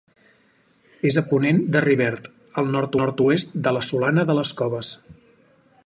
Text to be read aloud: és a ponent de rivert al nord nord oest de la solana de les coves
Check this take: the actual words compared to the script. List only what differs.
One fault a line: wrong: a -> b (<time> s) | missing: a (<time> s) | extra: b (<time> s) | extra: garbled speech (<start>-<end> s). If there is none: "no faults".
no faults